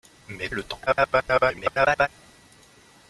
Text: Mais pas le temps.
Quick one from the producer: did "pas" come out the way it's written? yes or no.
no